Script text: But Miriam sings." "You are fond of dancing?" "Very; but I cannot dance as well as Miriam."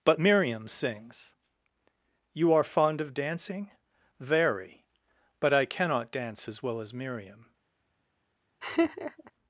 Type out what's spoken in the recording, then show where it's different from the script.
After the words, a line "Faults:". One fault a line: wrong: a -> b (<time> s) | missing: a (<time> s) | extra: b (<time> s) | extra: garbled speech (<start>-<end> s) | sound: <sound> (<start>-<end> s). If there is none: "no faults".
But Miriam sings." "You are fond of dancing?" "Very; but I cannot dance as well as Miriam."
Faults:
sound: laugh (8.6-9.3 s)